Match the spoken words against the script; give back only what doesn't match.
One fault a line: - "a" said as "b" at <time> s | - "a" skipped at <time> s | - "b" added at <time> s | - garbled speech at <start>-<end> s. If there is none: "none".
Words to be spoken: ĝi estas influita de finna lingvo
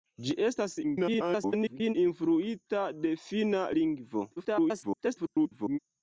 - garbled speech at 0.8-1.9 s
- garbled speech at 4.4-5.8 s